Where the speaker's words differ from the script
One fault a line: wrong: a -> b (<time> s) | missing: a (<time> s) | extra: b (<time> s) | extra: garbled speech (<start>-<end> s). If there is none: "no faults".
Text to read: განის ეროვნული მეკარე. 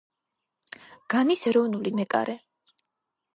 no faults